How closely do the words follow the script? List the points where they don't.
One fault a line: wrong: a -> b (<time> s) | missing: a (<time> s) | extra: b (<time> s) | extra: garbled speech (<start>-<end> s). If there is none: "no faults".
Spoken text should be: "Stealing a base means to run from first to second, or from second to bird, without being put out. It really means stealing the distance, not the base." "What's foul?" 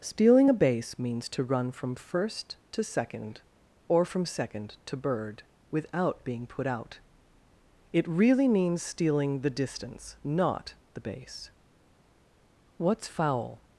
no faults